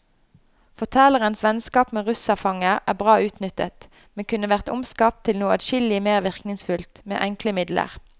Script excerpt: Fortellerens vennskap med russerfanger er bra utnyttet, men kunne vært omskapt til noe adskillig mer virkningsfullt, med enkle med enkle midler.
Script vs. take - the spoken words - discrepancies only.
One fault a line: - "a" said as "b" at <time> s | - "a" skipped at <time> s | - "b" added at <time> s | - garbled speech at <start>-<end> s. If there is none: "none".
- "med enkle" skipped at 7.6 s